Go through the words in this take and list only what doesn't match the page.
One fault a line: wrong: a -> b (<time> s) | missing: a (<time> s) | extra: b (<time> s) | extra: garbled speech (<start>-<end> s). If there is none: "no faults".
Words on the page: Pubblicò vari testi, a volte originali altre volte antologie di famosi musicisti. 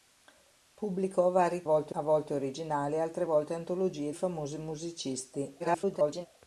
wrong: testi -> volte (1.6 s)
missing: di (4.1 s)
extra: garbled speech (5.6-6.3 s)